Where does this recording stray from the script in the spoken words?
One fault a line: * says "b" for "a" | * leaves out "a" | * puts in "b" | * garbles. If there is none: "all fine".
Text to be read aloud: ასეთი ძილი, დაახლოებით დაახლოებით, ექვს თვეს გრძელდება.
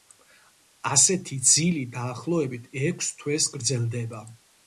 * leaves out "დაახლოებით"